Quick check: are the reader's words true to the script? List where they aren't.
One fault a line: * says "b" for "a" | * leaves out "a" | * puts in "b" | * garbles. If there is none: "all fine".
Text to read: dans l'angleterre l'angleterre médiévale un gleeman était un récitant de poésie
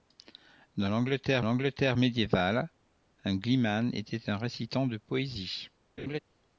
all fine